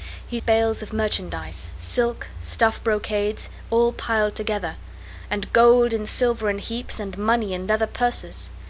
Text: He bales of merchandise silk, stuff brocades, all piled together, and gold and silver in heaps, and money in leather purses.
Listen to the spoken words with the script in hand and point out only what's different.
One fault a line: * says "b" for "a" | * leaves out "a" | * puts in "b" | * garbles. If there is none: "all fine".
all fine